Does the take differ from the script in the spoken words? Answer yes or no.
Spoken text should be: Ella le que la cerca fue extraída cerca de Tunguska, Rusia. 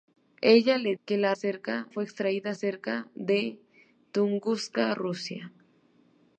no